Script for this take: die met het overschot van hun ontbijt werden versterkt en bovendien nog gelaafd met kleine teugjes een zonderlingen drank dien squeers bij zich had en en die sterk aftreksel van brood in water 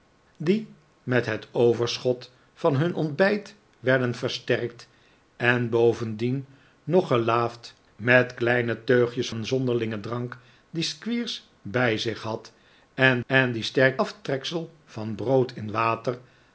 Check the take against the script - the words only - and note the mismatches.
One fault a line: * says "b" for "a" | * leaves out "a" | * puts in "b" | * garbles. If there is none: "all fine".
all fine